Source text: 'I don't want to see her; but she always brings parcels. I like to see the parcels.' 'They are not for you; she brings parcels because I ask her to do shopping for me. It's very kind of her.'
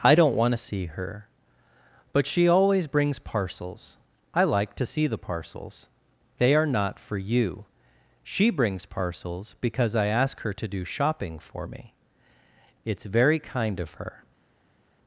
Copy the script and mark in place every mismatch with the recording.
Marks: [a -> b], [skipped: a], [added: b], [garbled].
'I don't want to see her; but she always brings parcels. I like to see the parcels.' 'They are not for you; she brings parcels because I ask her to do shopping for me. It's very kind of her.'